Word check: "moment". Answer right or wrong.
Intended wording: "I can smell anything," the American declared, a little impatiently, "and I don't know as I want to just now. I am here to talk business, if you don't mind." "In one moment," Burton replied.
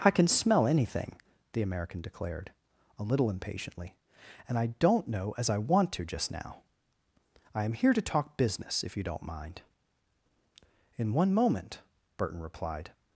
right